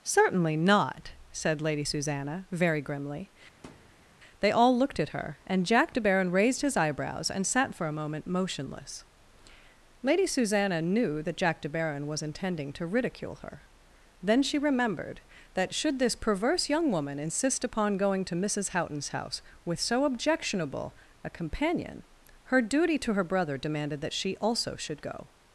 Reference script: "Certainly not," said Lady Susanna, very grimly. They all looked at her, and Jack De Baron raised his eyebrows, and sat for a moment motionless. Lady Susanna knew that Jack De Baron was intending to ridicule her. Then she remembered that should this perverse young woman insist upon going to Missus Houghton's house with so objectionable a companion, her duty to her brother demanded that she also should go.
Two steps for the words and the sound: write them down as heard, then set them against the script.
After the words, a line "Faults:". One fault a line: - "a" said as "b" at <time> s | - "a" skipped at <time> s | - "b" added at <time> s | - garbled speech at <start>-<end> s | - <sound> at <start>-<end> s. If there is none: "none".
"Certainly not," said Lady Susanna, very grimly. They all looked at her, and Jack De Baron raised his eyebrows, and sat for a moment motionless. Lady Susanna knew that Jack De Baron was intending to ridicule her. Then she remembered that should this perverse young woman insist upon going to Missus Houghton's house with so objectionable a companion, her duty to her brother demanded that she also should go.
Faults:
- thud at 3.6-4.1 s